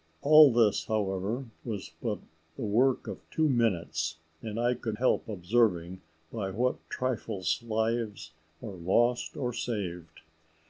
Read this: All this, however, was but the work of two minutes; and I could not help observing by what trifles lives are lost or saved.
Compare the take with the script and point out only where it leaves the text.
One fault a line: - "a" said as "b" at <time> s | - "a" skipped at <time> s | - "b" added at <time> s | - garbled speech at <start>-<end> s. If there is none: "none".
- "not" skipped at 5.0 s